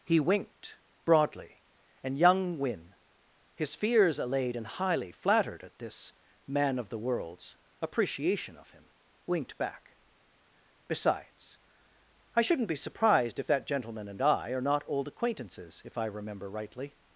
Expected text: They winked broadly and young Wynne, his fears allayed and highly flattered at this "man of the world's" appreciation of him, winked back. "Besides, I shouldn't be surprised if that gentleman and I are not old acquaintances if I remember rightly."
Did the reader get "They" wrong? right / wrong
wrong